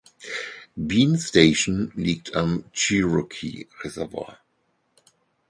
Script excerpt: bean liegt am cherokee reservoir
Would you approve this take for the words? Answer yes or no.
no